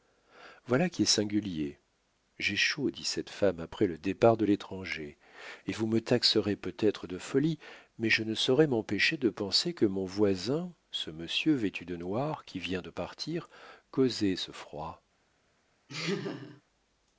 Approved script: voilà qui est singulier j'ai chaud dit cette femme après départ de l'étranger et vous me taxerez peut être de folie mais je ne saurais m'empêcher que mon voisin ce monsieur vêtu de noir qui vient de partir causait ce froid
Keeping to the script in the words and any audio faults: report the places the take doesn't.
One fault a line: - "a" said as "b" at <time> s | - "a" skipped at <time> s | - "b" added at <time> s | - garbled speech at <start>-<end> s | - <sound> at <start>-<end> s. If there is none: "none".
- "le" added at 3.9 s
- "de penser" added at 9.2 s
- laugh at 15.9-16.6 s